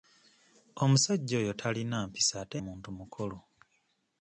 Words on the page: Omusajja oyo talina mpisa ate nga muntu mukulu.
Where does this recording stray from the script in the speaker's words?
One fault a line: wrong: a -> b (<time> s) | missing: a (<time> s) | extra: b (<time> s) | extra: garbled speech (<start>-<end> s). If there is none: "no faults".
missing: nga (2.6 s)